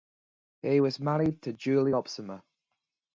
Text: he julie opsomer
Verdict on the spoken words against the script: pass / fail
fail